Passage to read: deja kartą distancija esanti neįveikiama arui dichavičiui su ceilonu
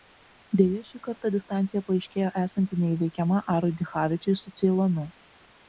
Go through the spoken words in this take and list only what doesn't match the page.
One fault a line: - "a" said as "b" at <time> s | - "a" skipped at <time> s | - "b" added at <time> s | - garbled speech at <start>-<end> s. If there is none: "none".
- "šį" added at 0.9 s
- "paaiškėjo" added at 1.9 s